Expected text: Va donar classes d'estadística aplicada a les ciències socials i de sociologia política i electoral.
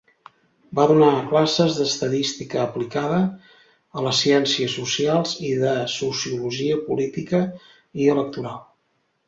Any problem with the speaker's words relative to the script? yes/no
no